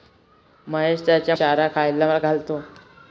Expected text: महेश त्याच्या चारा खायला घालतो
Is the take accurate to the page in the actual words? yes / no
yes